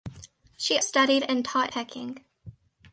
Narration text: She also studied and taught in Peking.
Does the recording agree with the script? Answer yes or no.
no